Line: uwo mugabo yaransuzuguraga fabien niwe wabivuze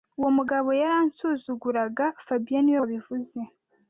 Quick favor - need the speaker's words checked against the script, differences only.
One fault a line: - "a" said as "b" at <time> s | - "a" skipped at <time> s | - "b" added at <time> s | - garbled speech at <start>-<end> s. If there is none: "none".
none